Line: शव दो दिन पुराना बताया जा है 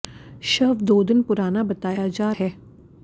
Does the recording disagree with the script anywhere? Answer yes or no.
no